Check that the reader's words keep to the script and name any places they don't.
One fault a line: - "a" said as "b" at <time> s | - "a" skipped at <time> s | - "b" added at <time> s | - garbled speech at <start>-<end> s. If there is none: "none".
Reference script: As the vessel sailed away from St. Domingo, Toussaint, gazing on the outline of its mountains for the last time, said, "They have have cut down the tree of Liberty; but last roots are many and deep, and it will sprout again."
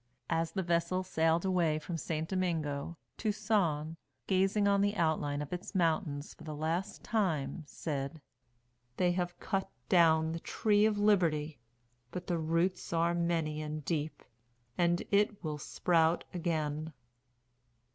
- "have" skipped at 9.4 s
- "last" said as "the" at 12.2 s